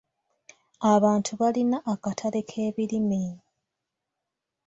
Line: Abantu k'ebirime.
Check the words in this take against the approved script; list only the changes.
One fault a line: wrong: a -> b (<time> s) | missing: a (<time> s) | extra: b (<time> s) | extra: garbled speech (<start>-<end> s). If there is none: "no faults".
extra: balina akatale (1.4 s)